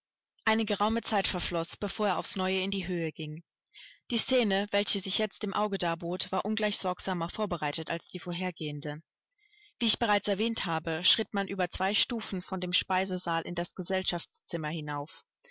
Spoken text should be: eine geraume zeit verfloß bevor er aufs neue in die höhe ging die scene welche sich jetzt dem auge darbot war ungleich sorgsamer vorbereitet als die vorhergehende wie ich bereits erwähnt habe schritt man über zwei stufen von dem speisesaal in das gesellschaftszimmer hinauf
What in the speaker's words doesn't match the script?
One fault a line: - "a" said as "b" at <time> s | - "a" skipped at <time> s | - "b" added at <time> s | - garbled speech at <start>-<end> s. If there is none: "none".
none